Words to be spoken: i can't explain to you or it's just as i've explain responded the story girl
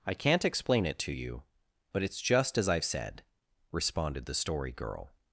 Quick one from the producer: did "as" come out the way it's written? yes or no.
yes